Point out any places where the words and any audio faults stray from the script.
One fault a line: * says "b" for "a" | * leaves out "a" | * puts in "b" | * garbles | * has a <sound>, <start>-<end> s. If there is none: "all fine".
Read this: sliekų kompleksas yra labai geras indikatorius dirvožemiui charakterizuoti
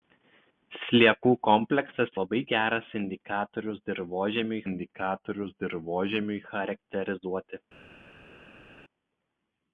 * leaves out "yra"
* puts in "indikatorius dirvožemiui"